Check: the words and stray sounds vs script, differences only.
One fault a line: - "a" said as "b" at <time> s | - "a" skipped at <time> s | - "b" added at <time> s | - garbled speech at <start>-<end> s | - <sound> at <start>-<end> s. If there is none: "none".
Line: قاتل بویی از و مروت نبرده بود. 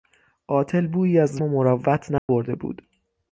- dropout at 2.2-2.3 s